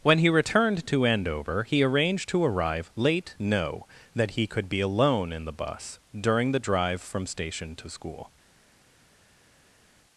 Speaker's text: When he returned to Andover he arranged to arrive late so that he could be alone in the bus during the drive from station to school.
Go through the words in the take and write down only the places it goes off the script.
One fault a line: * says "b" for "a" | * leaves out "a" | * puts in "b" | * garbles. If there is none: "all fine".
* says "no" for "so"